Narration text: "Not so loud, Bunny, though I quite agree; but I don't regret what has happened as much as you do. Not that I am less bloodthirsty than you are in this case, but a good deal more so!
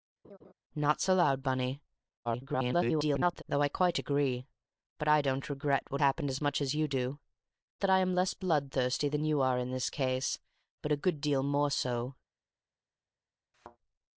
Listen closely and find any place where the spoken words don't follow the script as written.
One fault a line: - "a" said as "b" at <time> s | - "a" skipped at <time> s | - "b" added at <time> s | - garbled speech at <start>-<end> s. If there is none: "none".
- garbled speech at 2.2-3.4 s
- "has" skipped at 6.0 s
- "Not" skipped at 7.2 s